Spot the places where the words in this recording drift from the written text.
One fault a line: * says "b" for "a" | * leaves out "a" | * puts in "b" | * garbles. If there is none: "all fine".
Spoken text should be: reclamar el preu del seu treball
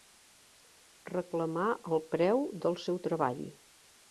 all fine